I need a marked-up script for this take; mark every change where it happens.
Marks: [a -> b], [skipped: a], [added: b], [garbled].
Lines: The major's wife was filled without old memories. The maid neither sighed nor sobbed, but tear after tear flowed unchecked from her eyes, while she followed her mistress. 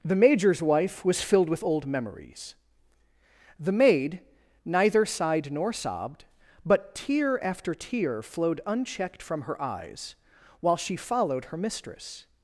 The major's wife was filled [without -> with] old memories. The maid neither sighed nor sobbed, but tear after tear flowed unchecked from her eyes, while she followed her mistress.